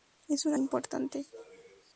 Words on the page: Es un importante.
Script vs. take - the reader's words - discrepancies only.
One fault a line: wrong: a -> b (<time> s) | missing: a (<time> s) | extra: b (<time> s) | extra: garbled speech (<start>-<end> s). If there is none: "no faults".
no faults